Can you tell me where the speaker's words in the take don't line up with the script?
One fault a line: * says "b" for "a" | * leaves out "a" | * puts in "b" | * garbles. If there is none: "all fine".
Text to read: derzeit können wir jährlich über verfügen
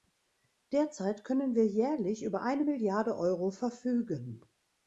* puts in "eine milliarde euro"